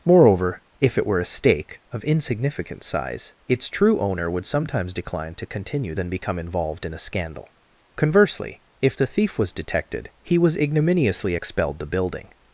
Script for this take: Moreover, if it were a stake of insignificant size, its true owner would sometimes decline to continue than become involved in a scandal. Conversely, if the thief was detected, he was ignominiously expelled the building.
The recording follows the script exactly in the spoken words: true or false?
true